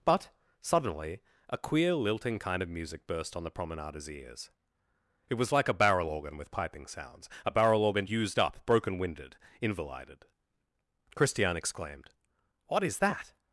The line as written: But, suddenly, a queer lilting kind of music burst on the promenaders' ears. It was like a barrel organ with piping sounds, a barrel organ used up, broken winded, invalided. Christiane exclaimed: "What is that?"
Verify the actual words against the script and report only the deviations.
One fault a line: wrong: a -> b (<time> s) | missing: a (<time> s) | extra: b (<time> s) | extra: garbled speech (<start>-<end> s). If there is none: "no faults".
no faults